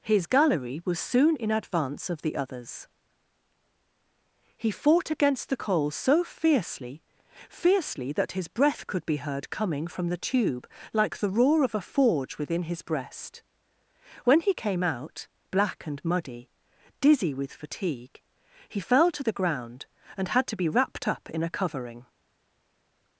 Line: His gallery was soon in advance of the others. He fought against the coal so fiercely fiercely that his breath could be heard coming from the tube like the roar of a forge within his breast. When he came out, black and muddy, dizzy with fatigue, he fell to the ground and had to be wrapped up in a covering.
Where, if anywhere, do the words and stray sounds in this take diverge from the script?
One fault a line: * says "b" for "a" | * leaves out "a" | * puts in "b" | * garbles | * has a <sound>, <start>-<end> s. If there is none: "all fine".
all fine